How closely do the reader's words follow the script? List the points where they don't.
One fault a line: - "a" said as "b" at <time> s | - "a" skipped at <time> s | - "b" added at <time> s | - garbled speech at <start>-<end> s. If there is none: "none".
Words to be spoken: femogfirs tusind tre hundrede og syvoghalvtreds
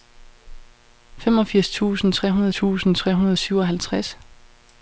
- "tusind tre hundrede" added at 2.5 s